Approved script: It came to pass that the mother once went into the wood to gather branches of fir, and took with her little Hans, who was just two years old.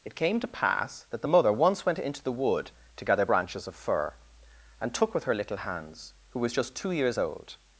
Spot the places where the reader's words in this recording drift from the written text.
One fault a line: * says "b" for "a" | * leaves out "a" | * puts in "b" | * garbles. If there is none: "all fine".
all fine